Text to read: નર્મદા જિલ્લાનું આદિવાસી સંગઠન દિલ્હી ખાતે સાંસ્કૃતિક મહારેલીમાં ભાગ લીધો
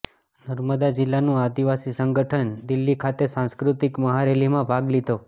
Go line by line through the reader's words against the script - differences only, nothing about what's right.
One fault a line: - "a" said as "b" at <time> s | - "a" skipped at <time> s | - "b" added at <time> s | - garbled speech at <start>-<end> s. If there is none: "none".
none